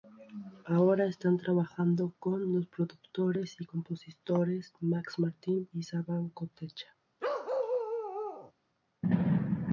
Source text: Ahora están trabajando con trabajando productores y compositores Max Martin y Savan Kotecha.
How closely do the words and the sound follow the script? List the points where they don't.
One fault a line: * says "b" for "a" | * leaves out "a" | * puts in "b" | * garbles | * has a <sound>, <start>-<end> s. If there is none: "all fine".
* says "los" for "trabajando"
* has a bark, 7.2-8.5 s